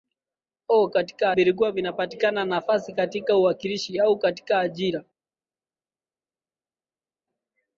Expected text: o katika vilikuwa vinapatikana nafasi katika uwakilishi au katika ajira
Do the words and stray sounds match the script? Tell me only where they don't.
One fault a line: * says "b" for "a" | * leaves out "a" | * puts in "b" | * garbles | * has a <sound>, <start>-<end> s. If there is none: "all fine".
all fine